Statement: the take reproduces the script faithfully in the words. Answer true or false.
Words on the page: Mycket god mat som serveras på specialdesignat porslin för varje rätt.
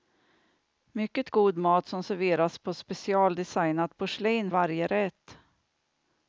false